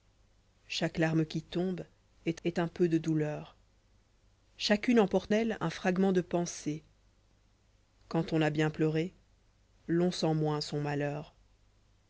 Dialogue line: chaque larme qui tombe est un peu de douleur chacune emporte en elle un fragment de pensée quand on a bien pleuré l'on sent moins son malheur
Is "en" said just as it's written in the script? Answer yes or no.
no